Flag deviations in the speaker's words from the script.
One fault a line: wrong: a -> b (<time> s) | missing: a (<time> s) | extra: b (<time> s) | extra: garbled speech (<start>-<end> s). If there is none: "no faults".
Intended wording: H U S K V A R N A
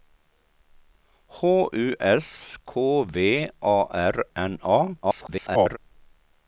extra: garbled speech (5.0-5.8 s)